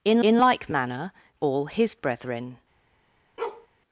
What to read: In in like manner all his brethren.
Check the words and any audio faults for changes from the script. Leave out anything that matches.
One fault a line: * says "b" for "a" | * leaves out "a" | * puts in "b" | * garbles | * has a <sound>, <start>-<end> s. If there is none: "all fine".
* has a bark, 3.4-3.7 s